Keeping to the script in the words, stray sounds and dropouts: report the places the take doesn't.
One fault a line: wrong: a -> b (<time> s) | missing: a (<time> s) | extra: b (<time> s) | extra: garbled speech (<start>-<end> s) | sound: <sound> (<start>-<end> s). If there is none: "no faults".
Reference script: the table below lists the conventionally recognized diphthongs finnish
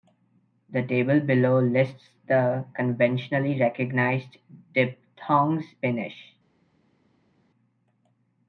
no faults